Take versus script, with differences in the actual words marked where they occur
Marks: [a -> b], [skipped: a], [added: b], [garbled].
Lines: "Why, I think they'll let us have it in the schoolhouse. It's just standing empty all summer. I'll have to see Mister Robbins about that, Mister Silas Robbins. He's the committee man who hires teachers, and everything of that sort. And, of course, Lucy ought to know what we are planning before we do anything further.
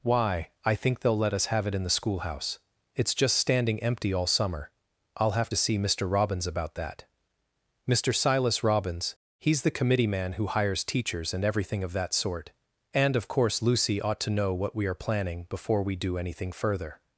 "Why, I think they'll let us have it in the schoolhouse. It's just standing empty all summer. I'll have to see Mister Robbins about that, Mister Silas Robbins. He's the committee man who hires teachers, and everything of that sort. And, of course, Lucy ought to know what we are planning before we do anything further.